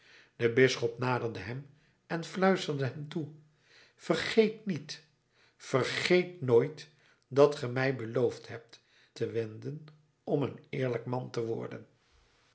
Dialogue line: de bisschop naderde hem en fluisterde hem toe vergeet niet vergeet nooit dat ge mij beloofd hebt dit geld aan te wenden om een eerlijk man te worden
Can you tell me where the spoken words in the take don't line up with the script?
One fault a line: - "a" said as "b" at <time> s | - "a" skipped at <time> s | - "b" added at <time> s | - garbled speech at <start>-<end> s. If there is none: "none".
- "dit geld aan" skipped at 8.8 s